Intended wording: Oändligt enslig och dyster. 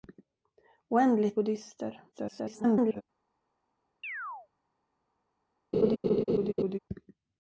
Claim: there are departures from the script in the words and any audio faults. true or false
true